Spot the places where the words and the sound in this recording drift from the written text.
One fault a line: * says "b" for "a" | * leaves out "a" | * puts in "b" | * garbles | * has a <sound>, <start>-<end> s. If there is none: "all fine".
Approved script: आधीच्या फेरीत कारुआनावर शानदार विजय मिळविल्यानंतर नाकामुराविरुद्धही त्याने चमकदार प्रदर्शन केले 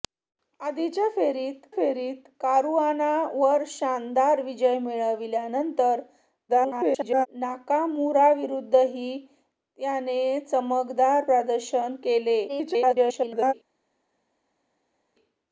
* puts in "फेरीत"
* garbles
* garbles